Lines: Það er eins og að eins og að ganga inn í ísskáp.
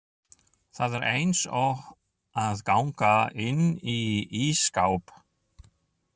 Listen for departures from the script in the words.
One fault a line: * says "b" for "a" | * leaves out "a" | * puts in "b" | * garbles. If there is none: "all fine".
* leaves out "eins og að"